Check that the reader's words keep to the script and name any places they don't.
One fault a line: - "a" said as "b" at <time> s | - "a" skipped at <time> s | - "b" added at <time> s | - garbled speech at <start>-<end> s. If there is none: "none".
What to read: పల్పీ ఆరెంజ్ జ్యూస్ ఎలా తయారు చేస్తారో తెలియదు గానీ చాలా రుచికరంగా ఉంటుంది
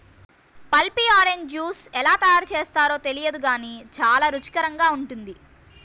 none